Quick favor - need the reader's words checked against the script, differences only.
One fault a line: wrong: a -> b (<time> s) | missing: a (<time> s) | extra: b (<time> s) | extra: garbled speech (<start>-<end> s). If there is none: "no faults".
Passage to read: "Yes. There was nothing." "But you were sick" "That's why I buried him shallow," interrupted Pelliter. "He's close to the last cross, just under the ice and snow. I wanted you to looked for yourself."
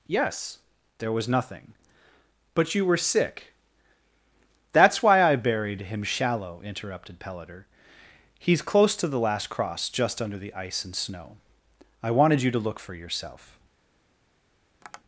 wrong: looked -> look (12.6 s)